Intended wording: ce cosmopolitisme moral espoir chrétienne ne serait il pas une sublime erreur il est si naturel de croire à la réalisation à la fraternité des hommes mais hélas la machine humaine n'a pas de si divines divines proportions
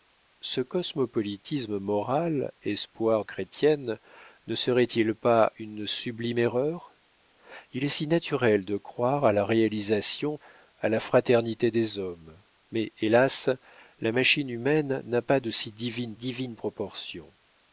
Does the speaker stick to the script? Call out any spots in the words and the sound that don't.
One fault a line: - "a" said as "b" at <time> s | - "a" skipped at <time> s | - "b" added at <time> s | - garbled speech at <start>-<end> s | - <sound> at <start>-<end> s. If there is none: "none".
none